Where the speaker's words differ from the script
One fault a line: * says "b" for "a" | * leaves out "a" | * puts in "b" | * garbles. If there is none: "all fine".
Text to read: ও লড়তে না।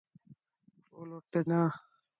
all fine